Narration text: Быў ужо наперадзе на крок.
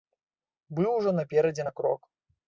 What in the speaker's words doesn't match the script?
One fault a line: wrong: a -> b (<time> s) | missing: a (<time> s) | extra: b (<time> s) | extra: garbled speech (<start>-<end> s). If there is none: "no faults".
no faults